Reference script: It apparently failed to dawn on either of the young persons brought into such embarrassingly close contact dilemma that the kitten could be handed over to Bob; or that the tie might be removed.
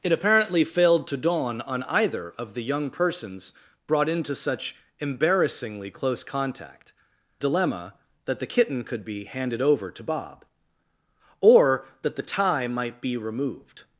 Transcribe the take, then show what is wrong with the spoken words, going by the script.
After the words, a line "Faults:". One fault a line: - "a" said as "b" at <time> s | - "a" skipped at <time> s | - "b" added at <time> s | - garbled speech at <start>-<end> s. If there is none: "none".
It apparently failed to dawn on either of the young persons brought into such embarrassingly close contact dilemma that the kitten could be handed over to Bob; or that the tie might be removed.
Faults:
none